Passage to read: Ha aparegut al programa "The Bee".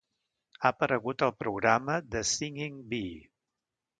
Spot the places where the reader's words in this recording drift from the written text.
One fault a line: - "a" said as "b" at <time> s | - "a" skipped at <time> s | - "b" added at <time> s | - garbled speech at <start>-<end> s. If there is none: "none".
- "Singing" added at 2.3 s